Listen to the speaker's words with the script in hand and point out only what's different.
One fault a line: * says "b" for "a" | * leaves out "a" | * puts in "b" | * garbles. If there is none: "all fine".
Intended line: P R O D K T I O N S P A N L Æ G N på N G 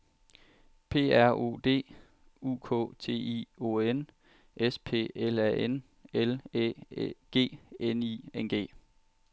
* puts in "U"
* puts in "L"
* says "I" for "på"